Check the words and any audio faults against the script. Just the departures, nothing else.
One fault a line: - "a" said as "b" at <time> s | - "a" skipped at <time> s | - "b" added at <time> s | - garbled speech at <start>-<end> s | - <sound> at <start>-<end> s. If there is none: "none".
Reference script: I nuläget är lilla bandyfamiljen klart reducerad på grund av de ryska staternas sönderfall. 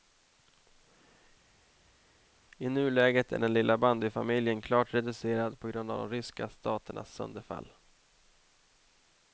- "den" added at 3.4 s